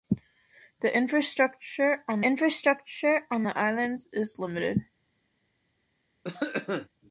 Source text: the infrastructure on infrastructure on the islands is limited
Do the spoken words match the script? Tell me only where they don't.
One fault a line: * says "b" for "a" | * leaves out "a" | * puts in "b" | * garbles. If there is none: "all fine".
all fine